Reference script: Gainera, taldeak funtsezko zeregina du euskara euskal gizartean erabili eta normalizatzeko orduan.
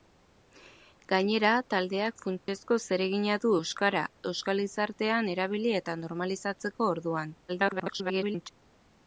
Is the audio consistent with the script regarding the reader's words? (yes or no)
no